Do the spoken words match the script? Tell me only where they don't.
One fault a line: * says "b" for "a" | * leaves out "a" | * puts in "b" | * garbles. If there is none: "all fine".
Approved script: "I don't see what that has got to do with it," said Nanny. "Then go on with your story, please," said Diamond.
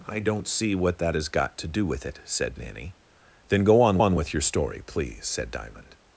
* puts in "on"